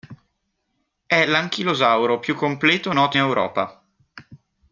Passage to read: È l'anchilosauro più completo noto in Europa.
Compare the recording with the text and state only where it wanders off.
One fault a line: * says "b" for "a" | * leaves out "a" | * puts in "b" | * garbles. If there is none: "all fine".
* leaves out "in"